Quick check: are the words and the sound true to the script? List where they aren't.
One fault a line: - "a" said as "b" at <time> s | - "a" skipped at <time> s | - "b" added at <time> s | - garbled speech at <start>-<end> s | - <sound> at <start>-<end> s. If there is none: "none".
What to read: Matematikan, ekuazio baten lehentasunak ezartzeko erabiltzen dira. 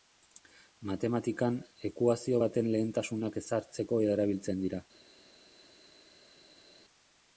none